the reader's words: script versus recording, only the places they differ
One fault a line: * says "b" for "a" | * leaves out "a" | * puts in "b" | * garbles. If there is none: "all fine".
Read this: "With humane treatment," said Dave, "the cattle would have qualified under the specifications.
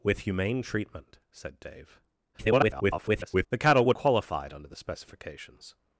* garbles
* leaves out "have"